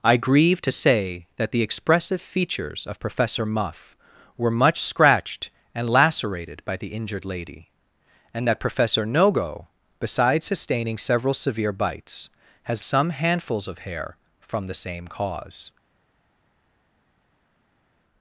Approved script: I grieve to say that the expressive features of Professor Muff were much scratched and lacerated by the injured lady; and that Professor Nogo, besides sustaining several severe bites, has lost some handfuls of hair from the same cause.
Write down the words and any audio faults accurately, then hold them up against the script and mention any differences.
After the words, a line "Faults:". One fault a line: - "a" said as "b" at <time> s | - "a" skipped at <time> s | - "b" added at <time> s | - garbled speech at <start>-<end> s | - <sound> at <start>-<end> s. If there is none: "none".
I grieve to say that the expressive features of Professor Muff were much scratched and lacerated by the injured lady; and that Professor Nogo, besides sustaining several severe bites, has some handfuls of hair from the same cause.
Faults:
- "lost" skipped at 12.9 s